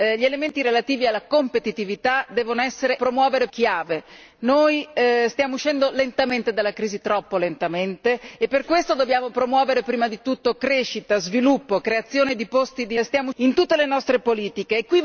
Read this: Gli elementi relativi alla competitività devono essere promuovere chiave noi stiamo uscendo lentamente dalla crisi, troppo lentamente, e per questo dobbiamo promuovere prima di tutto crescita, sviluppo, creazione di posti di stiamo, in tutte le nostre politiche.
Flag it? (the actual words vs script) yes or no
no